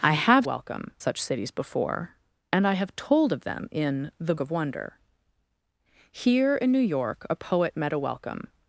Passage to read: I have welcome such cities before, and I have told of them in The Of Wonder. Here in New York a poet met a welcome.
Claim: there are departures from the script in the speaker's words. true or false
false